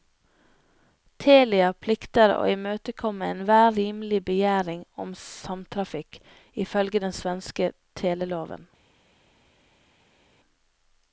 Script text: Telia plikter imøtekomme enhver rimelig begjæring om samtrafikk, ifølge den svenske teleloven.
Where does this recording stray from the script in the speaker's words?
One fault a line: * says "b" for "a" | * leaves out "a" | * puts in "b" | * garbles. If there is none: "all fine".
* puts in "å"